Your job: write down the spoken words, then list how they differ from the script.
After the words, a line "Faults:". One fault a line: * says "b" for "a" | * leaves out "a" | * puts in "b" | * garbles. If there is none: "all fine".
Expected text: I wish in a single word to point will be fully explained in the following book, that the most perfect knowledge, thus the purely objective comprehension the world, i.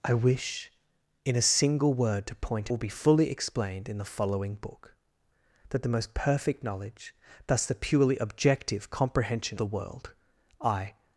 I wish in a single word to point will be fully explained in the following book, that the most perfect knowledge, thus the purely objective comprehension the world, i.
Faults:
all fine